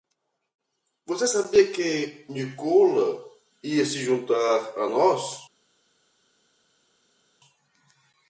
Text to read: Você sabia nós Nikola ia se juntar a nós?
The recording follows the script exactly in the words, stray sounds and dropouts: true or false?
false